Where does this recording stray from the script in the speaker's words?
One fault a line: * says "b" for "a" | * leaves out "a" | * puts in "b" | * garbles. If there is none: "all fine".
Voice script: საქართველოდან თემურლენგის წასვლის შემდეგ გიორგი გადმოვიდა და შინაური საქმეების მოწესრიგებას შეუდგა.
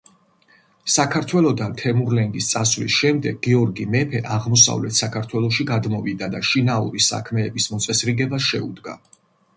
* puts in "მეფე აღმოსავლეთ საქართველოში"